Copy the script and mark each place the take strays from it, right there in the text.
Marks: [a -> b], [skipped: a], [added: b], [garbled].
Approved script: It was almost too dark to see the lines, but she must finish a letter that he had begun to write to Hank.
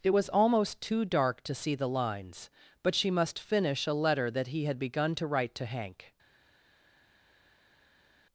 It was almost too dark to see the lines, but she must finish a letter that he had begun to write to Hank.